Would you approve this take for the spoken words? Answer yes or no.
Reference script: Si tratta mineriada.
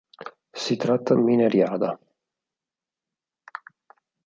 yes